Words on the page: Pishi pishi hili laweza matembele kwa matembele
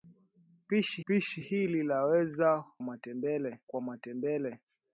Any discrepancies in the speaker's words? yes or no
no